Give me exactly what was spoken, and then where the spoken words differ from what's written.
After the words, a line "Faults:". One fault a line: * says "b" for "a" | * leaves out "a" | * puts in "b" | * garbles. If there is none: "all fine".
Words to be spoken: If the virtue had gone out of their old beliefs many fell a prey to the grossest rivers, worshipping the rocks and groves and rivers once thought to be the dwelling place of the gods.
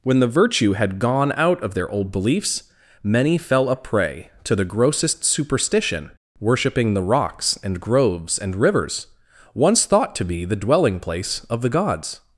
When the virtue had gone out of their old beliefs many fell a prey to the grossest superstition, worshipping the rocks and groves and rivers once thought to be the dwelling place of the gods.
Faults:
* says "When" for "If"
* says "superstition" for "rivers"